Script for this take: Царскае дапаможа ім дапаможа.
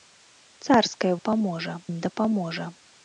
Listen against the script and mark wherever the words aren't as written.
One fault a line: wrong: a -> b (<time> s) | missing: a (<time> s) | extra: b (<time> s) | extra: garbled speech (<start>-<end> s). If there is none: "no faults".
no faults